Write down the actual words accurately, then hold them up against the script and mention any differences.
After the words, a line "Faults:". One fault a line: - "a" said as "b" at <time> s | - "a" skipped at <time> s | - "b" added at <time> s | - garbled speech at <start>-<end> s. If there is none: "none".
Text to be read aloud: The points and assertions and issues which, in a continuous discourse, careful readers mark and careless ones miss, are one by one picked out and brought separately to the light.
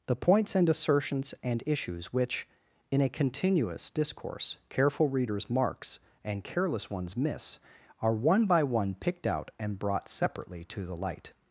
The points and assertions and issues which, in a continuous discourse, careful readers marks and careless ones miss, are one by one picked out and brought separately to the light.
Faults:
- "mark" said as "marks" at 5.5 s